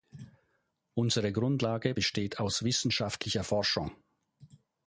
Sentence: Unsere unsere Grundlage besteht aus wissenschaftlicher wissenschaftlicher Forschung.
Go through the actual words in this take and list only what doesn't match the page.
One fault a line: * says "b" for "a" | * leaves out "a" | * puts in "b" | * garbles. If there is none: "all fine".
* leaves out "unsere"
* leaves out "wissenschaftlicher"